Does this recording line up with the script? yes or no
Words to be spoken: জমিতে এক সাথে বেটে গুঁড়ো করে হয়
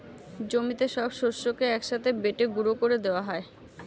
no